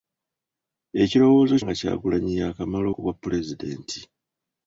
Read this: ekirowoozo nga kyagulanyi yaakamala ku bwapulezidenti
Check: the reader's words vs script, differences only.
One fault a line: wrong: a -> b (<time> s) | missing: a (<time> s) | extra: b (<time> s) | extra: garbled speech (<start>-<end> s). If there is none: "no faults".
no faults